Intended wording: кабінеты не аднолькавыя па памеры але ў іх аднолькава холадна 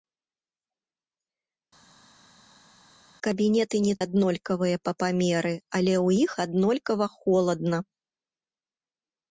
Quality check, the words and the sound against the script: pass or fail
pass